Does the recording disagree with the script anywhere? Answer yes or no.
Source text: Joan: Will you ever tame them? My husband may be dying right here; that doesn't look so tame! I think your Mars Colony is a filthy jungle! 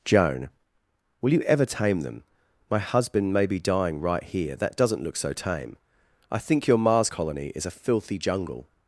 no